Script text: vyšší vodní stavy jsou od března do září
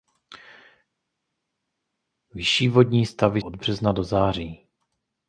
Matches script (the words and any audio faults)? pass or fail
fail